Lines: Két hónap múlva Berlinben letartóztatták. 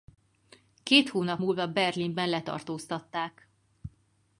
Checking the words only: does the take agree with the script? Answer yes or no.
yes